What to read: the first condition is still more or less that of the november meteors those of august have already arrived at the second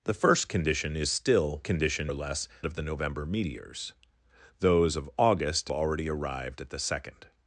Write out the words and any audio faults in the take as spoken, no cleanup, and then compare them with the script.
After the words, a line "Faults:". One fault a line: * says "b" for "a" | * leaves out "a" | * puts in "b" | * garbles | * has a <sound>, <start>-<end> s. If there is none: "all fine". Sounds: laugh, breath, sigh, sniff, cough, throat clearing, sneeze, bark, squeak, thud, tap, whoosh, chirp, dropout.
the first condition is still condition or less of the november meteors those of august already arrived at the second
Faults:
* says "condition" for "more"
* leaves out "that"
* leaves out "have"